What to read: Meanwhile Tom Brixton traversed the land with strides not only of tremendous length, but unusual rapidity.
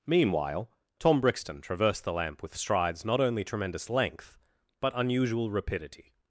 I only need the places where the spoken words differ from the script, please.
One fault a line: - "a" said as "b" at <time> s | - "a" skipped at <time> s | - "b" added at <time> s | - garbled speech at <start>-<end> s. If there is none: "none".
- "land" said as "lamp" at 2.1 s
- "of" skipped at 3.4 s